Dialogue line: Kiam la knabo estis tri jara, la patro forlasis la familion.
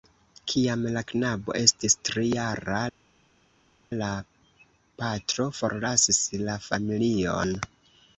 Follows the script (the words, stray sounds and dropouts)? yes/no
yes